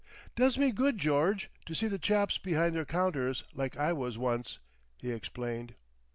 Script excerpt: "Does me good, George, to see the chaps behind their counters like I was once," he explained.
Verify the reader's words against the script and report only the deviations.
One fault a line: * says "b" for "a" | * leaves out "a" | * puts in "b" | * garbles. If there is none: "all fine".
all fine